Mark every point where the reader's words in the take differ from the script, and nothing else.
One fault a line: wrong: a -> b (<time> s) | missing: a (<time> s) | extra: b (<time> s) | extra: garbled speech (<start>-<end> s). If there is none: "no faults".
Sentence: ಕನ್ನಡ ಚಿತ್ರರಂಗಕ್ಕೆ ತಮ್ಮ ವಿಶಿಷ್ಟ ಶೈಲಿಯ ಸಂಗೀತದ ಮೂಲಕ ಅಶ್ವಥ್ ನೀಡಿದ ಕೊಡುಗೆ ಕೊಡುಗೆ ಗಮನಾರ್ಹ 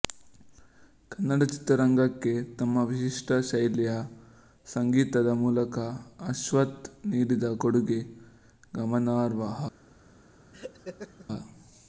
missing: ಕೊಡುಗೆ (8.0 s)